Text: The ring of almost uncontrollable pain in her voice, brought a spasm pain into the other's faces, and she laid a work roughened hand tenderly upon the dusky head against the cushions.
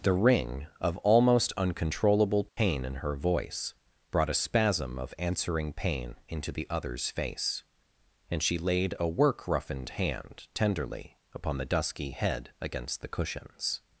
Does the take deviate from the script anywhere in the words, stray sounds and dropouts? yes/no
yes